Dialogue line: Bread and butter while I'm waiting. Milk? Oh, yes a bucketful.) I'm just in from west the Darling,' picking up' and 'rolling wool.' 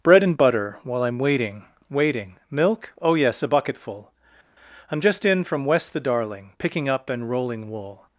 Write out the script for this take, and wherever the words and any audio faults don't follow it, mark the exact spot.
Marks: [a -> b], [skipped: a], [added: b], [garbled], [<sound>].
Bread and butter while I'm waiting. [added: waiting] Milk? Oh, yes a bucketful.) I'm just in from west the Darling,' picking up' and 'rolling wool.'